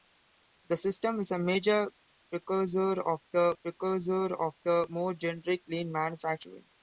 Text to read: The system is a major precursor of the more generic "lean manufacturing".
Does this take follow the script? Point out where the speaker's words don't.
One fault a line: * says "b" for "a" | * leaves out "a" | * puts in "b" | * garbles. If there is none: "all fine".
* puts in "precursor of the"